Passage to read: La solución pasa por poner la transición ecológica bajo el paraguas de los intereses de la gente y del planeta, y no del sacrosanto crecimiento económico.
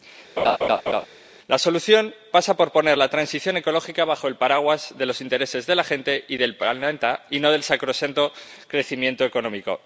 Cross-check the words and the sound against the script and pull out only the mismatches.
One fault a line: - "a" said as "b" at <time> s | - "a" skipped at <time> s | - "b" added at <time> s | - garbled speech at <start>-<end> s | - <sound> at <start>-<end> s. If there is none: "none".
- laugh at 0.4-1.1 s